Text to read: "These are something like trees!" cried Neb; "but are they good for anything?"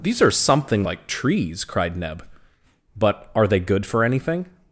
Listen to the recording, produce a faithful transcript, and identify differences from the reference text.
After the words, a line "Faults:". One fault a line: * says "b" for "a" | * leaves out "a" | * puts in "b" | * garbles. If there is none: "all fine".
"These are something like trees!" cried Neb; "but are they good for anything?"
Faults:
all fine